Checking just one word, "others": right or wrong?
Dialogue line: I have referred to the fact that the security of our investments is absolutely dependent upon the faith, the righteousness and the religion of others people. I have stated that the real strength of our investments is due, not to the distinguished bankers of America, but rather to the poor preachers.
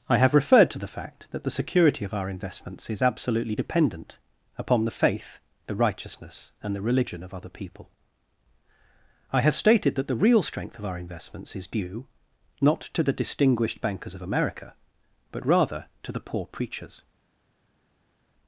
wrong